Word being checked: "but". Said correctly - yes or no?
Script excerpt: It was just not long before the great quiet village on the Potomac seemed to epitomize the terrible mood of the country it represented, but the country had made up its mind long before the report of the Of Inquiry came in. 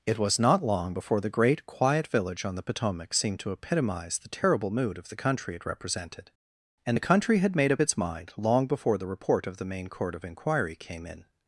no